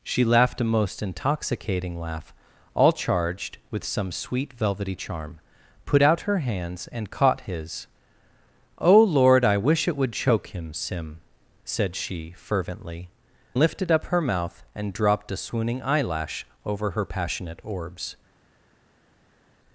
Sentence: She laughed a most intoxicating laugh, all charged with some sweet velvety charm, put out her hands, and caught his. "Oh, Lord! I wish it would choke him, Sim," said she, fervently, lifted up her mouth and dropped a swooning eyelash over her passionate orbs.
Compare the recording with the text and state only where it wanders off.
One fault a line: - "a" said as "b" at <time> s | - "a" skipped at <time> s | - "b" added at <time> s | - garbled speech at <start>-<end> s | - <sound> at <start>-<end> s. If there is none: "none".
none